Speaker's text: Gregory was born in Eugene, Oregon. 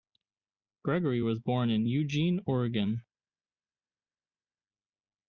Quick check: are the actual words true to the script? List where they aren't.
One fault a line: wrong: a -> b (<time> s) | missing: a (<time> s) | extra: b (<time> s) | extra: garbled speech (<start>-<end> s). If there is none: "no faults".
no faults